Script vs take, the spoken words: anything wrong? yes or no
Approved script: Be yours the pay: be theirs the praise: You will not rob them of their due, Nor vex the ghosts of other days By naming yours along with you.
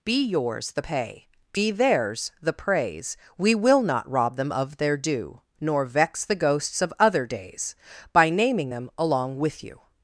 yes